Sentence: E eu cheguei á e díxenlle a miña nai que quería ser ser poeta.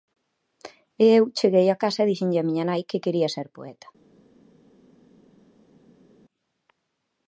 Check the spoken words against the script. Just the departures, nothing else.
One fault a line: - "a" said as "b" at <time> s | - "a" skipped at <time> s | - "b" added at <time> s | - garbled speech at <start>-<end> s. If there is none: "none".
- "casa" added at 1.8 s
- "ser" skipped at 3.5 s